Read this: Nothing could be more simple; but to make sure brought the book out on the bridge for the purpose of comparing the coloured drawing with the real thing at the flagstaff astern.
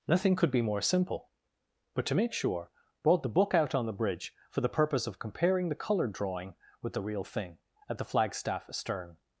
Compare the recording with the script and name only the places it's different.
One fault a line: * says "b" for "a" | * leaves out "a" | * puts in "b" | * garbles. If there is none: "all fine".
all fine